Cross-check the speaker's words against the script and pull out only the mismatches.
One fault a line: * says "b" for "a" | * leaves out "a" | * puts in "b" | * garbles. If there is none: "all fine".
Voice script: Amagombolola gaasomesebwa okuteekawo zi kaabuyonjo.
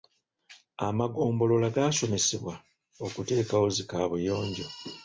all fine